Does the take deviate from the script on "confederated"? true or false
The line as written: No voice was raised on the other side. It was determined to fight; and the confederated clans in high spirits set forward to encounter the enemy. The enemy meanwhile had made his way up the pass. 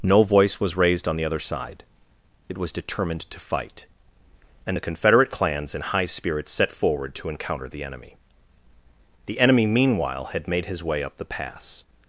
true